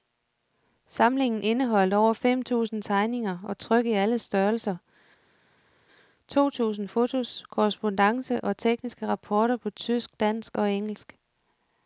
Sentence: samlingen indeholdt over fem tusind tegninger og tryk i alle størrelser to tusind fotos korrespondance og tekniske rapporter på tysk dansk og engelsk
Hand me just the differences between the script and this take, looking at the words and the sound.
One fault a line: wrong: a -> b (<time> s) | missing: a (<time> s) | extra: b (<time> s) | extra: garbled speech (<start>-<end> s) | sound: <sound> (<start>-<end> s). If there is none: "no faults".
no faults